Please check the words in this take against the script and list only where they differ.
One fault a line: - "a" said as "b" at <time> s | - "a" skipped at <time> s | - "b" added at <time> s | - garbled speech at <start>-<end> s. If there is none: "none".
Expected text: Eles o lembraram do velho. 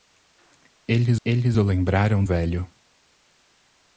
- "eles" added at 1.2 s
- "do" skipped at 2.2 s